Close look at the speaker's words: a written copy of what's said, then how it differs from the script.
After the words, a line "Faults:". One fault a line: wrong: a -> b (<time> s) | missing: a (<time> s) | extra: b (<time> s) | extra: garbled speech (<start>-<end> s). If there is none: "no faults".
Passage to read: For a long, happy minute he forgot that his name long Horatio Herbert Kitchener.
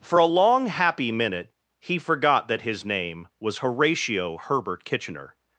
For a long, happy minute he forgot that his name was Horatio Herbert Kitchener.
Faults:
wrong: long -> was (3.4 s)